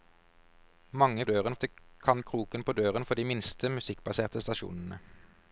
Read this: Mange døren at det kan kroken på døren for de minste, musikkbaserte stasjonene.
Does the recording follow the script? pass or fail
pass